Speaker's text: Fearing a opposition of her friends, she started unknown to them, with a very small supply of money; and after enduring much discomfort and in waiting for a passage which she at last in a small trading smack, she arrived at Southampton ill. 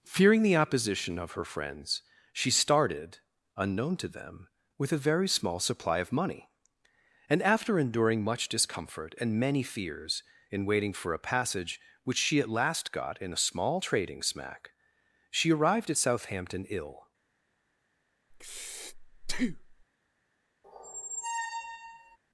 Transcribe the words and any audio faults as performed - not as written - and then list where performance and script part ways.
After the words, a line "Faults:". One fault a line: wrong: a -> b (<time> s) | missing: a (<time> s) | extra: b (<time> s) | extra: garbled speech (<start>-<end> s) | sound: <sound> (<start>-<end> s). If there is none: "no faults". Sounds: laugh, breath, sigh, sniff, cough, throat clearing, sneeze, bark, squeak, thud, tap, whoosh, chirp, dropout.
Fearing the opposition of her friends, she started unknown to them, with a very small supply of money; and after enduring much discomfort and many fears in waiting for a passage which she at last got in a small trading smack, she arrived at Southampton ill.
Faults:
wrong: a -> the (0.4 s)
extra: many fears (9.4 s)
extra: got (12.9 s)
sound: breath (18.3-19.8 s)
sound: squeak (20.6-22.2 s)